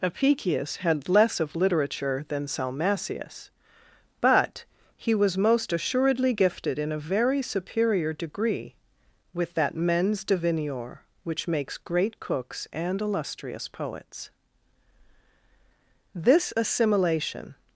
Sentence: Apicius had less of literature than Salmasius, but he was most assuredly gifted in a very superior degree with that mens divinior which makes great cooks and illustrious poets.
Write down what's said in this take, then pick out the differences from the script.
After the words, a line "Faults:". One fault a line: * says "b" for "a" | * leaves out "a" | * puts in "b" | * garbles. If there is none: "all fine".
Apicius had less of literature than Salmasius, but he was most assuredly gifted in a very superior degree with that mens divinior which makes great cooks and illustrious poets. This assimilation
Faults:
* puts in "This assimilation"